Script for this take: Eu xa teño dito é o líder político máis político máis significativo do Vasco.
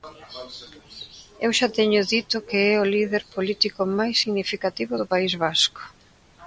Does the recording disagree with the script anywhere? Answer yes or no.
yes